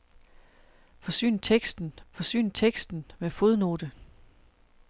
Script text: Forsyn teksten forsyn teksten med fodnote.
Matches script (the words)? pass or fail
pass